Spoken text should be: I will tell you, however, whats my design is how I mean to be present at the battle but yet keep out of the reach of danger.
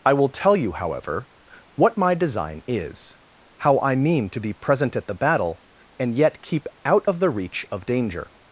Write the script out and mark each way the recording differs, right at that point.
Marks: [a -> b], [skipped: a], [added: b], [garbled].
I will tell you, however, [whats -> what] my design is how I mean to be present at the battle [but -> and] yet keep out of the reach of danger.